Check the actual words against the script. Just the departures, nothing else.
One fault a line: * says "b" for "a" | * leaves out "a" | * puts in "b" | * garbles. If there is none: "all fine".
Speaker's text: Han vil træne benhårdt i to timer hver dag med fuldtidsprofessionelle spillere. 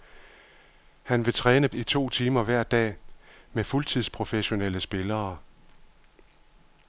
* leaves out "benhårdt"